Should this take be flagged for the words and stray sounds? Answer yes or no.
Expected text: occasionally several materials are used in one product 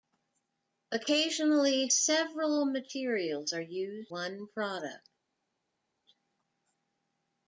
yes